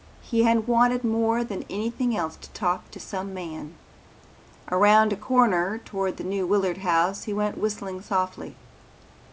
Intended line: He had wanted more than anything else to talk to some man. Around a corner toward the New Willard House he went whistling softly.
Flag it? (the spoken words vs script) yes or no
no